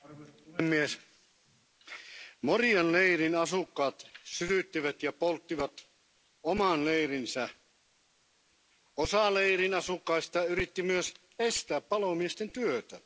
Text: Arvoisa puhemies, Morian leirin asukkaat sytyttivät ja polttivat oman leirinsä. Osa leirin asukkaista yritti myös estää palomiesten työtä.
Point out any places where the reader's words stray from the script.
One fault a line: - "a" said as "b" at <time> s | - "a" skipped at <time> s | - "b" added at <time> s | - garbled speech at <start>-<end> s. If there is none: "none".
none